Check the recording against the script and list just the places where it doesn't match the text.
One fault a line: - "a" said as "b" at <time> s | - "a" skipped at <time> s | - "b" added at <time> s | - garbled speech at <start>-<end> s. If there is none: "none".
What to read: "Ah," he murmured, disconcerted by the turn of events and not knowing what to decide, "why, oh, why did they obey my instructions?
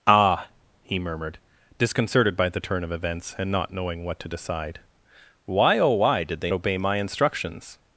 none